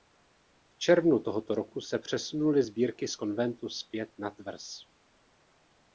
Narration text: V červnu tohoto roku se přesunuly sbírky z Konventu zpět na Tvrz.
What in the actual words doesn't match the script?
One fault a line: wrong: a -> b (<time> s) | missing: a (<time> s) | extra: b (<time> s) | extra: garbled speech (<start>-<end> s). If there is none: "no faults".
no faults